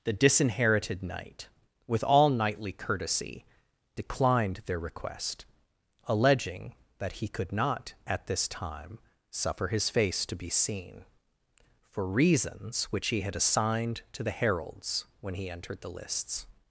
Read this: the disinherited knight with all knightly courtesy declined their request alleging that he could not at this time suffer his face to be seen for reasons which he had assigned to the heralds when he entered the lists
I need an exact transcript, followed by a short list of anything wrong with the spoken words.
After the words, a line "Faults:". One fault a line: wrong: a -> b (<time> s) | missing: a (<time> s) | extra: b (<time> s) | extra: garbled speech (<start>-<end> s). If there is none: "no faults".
the disinherited knight with all knightly courtesy declined their request alleging that he could not at this time suffer his face to be seen for reasons which he had assigned to the heralds when he entered the lists
Faults:
no faults